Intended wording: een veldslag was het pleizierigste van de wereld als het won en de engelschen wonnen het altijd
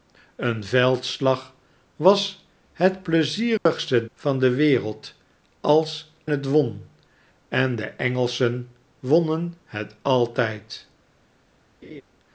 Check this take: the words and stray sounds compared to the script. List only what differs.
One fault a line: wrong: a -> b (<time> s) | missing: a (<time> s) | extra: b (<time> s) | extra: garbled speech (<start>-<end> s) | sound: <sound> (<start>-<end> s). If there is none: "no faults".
sound: dropout (3.6-3.7 s)
sound: laugh (11.8-12.0 s)